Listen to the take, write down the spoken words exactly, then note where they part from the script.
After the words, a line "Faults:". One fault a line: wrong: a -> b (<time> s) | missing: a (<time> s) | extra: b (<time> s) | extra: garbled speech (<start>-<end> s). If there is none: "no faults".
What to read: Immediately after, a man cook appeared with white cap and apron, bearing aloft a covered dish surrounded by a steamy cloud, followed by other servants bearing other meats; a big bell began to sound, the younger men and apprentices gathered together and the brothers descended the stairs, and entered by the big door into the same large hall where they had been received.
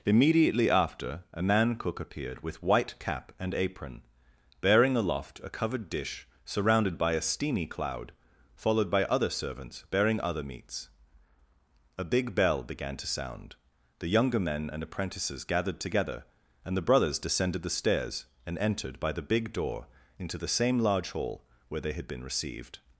Immediately after, a man cook appeared with white cap and apron, bearing aloft a covered dish surrounded by a steamy cloud, followed by other servants bearing other meats; a big bell began to sound, the younger men and apprentices gathered together and the brothers descended the stairs, and entered by the big door into the same large hall where they had been received.
Faults:
no faults